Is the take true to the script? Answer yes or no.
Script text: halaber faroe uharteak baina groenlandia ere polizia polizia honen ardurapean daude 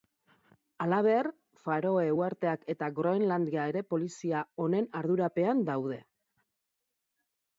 no